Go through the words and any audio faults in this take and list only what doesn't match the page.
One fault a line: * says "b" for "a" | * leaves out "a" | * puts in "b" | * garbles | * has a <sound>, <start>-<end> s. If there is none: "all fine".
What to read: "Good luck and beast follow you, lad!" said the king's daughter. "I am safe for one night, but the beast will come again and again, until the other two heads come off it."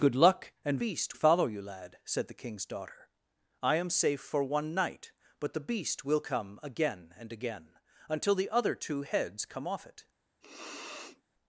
* has a sniff, 10.4-11.2 s